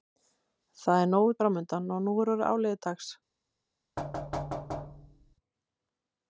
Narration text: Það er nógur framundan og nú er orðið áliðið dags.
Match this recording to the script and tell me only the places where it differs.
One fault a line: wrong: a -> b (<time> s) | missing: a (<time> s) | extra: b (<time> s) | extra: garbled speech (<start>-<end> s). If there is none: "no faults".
no faults